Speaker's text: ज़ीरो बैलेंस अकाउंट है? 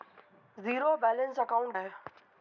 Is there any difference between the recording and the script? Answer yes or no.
no